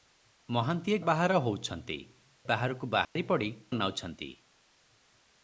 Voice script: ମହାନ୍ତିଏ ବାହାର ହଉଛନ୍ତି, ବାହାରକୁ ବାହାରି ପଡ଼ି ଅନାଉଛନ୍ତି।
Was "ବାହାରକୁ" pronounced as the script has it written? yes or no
yes